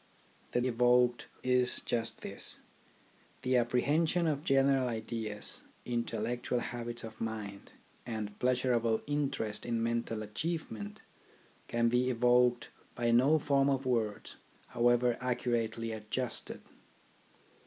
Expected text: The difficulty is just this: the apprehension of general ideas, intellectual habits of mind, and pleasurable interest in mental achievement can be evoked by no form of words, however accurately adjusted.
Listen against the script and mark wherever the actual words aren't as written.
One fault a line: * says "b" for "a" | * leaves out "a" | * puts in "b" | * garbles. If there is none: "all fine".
* says "evoked" for "difficulty"